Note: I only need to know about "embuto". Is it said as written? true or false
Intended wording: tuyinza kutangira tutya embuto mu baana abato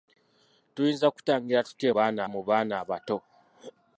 false